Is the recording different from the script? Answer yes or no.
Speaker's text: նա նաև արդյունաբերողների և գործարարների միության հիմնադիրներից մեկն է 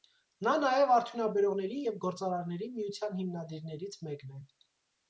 no